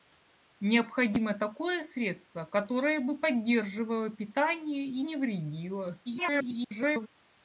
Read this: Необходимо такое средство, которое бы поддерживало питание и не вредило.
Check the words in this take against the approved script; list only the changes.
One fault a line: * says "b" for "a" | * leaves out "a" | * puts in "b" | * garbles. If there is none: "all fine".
* garbles